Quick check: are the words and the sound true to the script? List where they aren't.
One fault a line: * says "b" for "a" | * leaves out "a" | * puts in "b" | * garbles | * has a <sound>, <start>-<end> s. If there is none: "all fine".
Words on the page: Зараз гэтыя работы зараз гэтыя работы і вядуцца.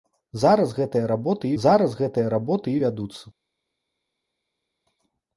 all fine